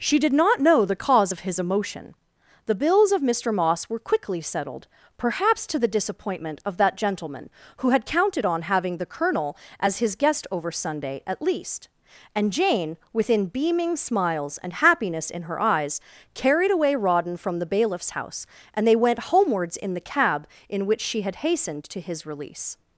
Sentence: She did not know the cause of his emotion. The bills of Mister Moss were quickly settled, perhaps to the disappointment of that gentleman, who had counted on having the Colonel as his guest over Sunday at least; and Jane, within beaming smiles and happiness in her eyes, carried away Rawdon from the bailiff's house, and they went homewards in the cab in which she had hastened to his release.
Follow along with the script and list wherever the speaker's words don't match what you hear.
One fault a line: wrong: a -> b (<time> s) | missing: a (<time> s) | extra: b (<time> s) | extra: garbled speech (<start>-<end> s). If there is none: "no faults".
no faults